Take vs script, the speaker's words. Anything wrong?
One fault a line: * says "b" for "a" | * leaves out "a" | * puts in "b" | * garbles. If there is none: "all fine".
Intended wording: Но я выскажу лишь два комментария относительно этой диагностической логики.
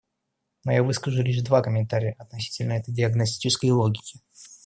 all fine